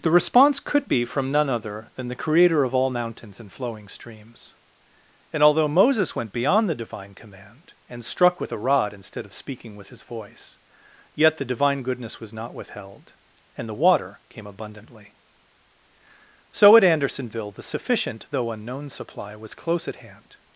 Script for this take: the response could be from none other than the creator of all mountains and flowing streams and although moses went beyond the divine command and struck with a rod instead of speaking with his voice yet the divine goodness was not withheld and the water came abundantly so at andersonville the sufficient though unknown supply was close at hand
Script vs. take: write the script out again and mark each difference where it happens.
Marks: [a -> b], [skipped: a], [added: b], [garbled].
the response could be from none other than the creator of all mountains and flowing streams and although moses went beyond the divine command and struck with a rod instead of speaking with his voice yet the divine goodness was not withheld and the water came abundantly so at andersonville the sufficient though unknown supply was close at hand